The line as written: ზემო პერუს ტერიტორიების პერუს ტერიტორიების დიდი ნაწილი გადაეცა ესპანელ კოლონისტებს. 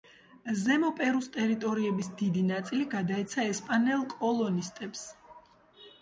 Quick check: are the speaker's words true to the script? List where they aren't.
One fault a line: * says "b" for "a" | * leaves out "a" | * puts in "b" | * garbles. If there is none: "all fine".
* leaves out "პერუს ტერიტორიების"